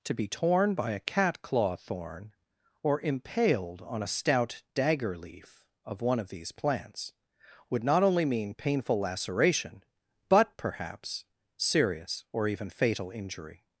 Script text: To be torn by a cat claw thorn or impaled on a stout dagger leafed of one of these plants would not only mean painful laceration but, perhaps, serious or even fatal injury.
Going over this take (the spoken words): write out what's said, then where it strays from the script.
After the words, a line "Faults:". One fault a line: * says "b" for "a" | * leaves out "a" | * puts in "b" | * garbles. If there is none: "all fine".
To be torn by a cat claw thorn or impaled on a stout dagger leaf of one of these plants would not only mean painful laceration but, perhaps, serious or even fatal injury.
Faults:
* says "leaf" for "leafed"